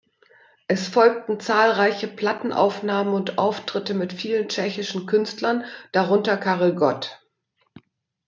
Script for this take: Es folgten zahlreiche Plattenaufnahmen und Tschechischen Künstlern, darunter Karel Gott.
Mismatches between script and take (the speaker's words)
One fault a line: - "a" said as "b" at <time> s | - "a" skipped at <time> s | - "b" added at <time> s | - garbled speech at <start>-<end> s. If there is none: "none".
- "Auftritte mit vielen" added at 3.4 s